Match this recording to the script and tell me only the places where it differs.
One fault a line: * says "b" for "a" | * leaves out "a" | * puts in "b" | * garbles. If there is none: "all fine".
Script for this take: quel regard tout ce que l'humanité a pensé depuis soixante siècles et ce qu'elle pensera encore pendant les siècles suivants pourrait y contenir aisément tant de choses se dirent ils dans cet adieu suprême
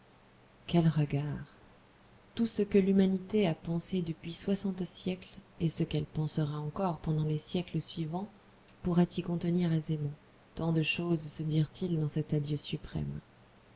all fine